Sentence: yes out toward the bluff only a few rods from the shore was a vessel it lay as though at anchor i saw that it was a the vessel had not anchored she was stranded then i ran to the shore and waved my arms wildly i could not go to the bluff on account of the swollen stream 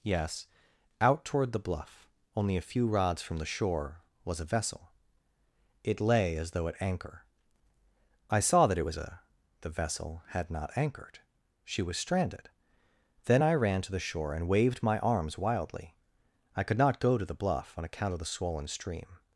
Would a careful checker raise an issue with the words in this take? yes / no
no